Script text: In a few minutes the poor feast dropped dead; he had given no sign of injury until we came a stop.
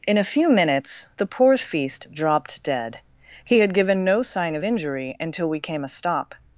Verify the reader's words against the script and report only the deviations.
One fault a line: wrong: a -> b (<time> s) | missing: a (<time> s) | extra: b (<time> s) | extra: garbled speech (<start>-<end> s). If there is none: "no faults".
no faults